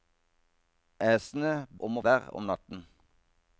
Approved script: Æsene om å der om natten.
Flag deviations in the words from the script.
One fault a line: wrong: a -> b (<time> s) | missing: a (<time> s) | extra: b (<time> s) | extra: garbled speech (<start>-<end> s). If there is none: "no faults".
no faults